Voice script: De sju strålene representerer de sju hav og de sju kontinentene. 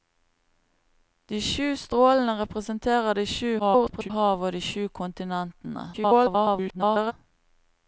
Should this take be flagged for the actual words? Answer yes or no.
yes